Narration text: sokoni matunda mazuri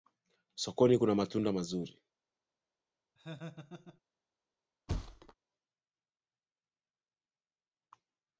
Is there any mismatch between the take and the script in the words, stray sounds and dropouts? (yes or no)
yes